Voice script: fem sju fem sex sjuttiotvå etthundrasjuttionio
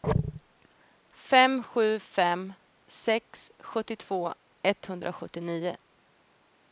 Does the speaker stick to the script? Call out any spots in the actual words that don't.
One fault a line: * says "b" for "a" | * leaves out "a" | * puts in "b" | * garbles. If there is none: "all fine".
all fine